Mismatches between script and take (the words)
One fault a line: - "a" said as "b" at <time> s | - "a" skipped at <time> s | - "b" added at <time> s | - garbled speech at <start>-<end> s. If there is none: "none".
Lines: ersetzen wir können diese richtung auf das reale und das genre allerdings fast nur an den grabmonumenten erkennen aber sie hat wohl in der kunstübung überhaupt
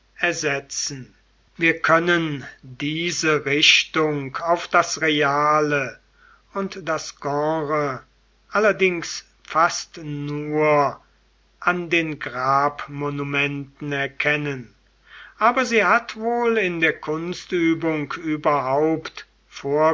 none